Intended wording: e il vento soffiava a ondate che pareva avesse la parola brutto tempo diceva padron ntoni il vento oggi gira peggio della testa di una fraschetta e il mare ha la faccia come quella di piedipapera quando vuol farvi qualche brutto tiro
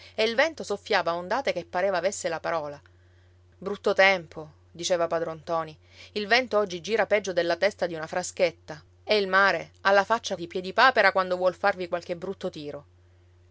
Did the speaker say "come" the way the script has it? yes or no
no